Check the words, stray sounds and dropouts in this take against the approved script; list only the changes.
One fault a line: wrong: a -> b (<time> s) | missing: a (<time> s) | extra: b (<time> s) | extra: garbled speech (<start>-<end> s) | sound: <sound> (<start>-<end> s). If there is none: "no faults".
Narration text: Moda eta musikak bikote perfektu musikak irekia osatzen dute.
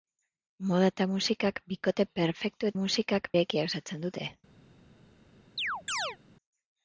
sound: chirp (5.6-6.2 s)